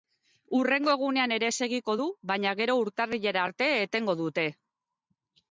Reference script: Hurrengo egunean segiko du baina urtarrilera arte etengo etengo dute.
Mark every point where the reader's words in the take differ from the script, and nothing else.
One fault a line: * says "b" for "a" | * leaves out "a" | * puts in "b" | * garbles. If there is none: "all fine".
* puts in "ere"
* puts in "gero"
* leaves out "etengo"